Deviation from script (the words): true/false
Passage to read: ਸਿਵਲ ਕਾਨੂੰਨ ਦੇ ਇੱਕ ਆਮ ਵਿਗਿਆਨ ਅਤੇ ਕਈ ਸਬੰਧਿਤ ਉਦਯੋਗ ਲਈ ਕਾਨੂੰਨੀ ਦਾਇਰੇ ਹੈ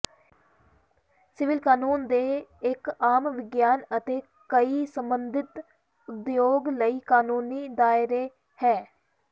false